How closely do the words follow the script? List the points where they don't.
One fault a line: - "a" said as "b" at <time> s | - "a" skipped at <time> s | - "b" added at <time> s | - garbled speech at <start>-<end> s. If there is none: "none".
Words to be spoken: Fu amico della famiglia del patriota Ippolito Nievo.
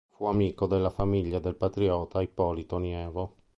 none